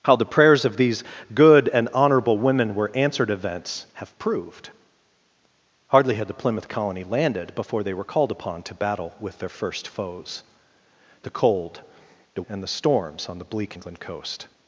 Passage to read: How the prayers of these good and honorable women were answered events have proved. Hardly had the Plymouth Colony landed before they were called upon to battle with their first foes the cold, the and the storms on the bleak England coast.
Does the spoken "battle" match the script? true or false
true